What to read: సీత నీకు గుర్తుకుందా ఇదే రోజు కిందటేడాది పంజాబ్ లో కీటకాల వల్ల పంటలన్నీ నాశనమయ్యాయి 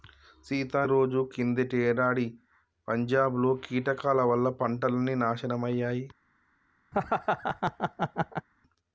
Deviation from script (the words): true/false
true